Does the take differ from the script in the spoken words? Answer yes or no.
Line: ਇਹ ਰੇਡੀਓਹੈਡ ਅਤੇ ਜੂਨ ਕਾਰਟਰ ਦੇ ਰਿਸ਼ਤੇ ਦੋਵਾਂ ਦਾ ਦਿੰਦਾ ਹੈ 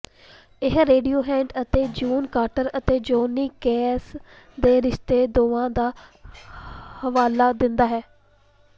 yes